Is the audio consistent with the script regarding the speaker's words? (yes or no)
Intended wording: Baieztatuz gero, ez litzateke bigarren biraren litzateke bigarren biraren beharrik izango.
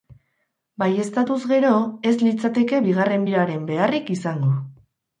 no